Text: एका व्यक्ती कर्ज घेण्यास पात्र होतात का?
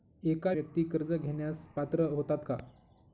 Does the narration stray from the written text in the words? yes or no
no